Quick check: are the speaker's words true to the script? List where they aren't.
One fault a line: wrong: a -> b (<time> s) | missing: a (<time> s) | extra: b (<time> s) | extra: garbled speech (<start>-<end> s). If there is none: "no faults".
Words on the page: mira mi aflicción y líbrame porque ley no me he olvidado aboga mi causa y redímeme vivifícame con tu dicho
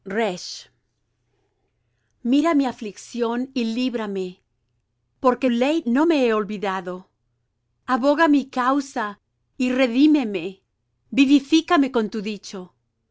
no faults